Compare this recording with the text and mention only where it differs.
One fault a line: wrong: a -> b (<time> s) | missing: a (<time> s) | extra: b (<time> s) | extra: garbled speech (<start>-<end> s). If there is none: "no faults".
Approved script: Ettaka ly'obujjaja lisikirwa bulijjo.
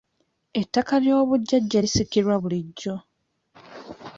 no faults